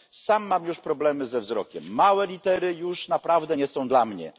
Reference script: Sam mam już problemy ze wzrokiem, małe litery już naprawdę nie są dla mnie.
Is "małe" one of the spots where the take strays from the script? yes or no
no